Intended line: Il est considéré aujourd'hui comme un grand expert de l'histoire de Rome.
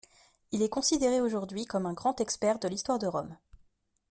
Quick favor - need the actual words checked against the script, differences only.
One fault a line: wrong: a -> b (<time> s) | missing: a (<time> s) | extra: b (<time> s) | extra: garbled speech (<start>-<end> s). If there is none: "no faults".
no faults